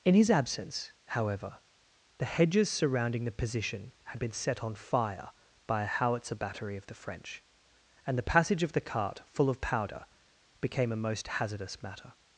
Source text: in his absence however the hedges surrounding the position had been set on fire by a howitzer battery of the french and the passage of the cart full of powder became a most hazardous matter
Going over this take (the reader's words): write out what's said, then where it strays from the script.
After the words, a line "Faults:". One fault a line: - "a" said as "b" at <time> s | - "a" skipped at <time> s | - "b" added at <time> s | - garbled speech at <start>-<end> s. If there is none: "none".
in his absence however the hedges surrounding the position had been set on fire by a howitzer battery of the french and the passage of the cart full of powder became a most hazardous matter
Faults:
none